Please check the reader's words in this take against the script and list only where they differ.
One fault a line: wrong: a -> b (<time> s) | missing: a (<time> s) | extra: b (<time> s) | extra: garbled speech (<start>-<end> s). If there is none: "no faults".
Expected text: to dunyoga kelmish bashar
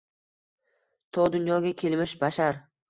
no faults